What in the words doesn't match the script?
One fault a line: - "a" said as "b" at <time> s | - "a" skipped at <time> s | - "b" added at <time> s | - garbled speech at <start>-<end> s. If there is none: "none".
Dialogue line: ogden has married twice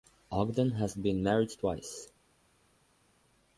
- "been" added at 0.9 s